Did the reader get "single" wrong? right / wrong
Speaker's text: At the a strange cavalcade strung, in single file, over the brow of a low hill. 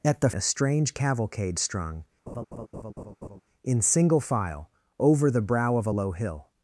right